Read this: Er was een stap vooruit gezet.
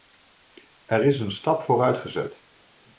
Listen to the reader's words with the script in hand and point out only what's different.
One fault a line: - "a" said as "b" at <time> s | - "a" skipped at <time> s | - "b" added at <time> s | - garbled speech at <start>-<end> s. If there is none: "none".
- "was" said as "is" at 1.1 s